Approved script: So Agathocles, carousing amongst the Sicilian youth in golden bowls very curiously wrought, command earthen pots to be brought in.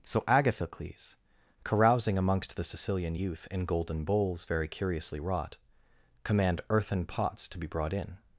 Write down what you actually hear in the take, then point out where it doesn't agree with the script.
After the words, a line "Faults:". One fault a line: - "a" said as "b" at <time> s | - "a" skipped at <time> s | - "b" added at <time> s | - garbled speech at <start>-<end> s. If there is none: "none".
So Agathocles, carousing amongst the Sicilian youth in golden bowls very curiously wrought, command earthen pots to be brought in.
Faults:
none